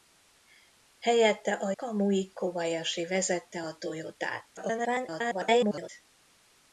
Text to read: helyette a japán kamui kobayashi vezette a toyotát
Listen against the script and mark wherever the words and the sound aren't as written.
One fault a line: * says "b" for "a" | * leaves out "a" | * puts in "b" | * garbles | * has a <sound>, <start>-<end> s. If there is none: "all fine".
* leaves out "japán"
* garbles